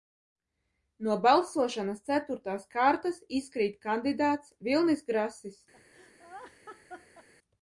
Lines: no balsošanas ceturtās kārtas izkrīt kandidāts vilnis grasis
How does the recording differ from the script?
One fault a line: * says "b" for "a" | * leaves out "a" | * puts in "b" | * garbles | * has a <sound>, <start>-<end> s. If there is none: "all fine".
* has a laugh, 5.7-7.3 s